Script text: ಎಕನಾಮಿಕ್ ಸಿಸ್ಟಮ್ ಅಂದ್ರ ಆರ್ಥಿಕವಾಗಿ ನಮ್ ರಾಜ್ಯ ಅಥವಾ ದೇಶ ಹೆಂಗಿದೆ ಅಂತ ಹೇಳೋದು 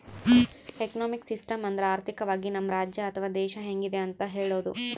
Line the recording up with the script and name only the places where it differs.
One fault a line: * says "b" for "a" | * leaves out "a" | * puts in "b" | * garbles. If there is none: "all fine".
all fine